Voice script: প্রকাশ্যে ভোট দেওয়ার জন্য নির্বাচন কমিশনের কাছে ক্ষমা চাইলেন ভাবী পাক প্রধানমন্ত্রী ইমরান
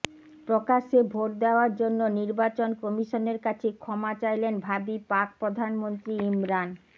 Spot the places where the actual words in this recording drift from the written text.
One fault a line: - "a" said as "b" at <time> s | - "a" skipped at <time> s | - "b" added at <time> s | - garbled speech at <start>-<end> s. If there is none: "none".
none